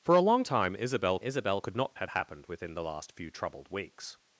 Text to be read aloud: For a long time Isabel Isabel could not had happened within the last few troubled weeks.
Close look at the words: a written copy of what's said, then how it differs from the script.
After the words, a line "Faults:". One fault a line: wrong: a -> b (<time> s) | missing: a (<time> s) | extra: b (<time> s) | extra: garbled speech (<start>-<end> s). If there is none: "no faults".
For a long time Isabel Isabel could not had happened within the last few troubled weeks.
Faults:
no faults